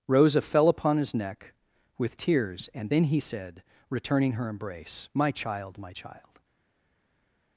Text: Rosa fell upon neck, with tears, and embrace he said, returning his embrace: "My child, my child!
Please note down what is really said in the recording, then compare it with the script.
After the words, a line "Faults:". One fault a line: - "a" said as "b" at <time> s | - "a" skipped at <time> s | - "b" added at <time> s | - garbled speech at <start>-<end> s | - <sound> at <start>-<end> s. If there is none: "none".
Rosa fell upon his neck, with tears, and then he said, returning her embrace: "My child, my child!
Faults:
- "his" added at 1.0 s
- "embrace" said as "then" at 2.9 s
- "his" said as "her" at 4.3 s